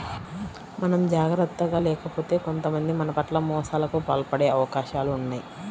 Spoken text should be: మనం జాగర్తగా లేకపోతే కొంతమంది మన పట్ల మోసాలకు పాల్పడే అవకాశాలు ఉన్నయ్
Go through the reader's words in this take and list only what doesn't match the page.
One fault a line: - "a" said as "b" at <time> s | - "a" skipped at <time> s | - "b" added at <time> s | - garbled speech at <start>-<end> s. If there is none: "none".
none